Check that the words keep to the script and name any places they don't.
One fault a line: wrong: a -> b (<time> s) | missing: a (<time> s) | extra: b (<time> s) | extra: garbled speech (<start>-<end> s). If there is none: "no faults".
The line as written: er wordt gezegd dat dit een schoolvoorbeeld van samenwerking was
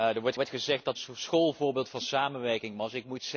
extra: wordt (0.3 s)
missing: dit een (1.0 s)